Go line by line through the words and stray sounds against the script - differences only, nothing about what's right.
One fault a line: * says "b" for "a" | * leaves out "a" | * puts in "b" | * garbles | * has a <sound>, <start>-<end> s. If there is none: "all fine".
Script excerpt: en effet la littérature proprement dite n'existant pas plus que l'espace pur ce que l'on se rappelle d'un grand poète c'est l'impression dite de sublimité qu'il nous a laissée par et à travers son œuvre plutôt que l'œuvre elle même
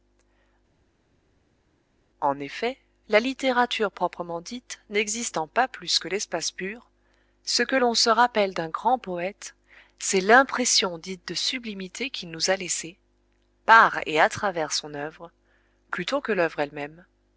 all fine